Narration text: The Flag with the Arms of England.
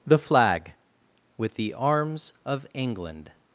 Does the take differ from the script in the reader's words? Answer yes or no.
no